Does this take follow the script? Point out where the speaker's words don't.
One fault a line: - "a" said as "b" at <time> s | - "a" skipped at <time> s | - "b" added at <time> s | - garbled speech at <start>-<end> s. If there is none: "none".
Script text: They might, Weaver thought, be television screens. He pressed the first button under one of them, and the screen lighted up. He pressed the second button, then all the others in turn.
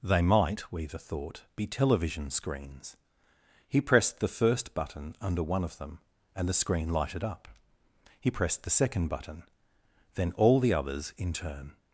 none